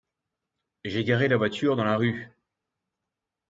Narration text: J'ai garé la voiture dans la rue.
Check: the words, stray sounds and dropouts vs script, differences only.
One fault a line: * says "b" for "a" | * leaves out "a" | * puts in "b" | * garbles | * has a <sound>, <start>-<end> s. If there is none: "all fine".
all fine